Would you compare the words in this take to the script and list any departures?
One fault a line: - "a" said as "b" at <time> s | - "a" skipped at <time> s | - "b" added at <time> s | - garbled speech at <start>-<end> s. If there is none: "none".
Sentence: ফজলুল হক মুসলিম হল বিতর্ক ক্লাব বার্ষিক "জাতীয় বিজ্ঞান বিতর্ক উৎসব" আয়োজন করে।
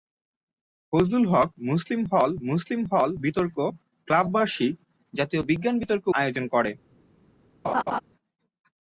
- "মুসলিম হল" added at 2.5 s
- "উৎসব" skipped at 6.0 s